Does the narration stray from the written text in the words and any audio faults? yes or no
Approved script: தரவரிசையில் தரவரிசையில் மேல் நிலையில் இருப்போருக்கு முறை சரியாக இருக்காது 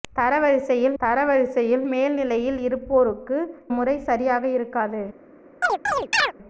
yes